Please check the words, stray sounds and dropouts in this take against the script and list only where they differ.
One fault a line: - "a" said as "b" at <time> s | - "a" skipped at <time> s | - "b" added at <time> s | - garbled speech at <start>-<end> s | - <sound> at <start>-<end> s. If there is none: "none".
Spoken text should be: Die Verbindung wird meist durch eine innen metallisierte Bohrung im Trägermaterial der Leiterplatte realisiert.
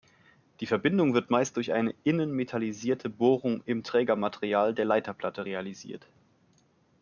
none